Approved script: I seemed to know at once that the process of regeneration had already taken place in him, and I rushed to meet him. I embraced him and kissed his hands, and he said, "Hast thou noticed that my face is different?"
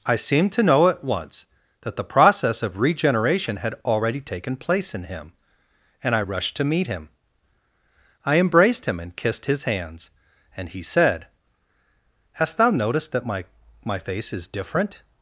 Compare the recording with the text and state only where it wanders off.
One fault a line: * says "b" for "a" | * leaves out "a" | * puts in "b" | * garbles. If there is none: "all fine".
* puts in "my"